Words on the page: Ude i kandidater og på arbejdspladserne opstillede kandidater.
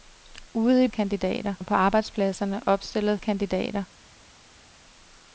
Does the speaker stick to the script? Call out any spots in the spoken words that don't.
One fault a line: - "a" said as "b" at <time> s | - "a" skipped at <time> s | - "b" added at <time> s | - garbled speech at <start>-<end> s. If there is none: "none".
none